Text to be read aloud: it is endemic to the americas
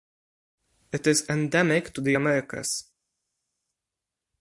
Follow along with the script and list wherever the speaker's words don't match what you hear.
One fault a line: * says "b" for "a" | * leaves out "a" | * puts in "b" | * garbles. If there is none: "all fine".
all fine